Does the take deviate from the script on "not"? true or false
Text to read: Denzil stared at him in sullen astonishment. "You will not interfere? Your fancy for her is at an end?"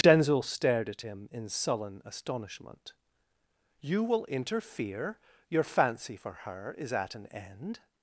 true